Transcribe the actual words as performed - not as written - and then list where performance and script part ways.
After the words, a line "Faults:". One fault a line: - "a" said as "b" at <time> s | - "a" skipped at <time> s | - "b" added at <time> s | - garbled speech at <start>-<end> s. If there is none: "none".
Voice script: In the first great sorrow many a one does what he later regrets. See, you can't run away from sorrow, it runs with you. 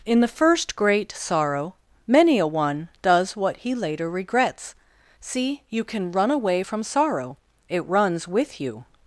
In the first great sorrow many a one does what he later regrets. See, you can run away from sorrow, it runs with you.
Faults:
- "can't" said as "can" at 5.8 s